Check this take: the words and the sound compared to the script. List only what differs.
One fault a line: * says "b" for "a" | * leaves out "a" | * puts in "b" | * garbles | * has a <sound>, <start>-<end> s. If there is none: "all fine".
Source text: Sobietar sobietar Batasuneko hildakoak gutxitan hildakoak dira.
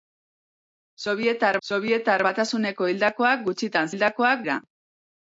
all fine